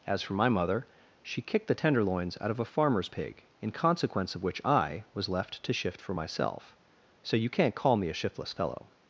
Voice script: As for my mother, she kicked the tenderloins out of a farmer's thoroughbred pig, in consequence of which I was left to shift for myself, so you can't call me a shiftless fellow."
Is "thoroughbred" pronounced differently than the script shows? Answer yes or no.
yes